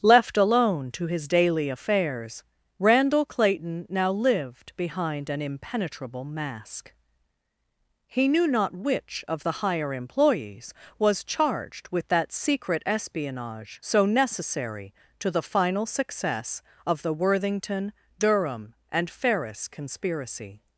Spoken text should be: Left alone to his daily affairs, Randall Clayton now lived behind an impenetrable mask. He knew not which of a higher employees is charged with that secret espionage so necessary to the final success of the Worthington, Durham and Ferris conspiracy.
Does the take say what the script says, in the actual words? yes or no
no